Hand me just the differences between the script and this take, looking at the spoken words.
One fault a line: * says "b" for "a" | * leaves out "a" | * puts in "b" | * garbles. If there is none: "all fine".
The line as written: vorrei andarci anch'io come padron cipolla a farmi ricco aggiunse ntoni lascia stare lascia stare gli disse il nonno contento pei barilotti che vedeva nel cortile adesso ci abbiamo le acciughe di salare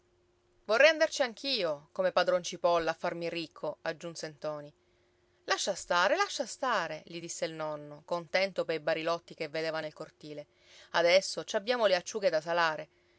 * says "da" for "di"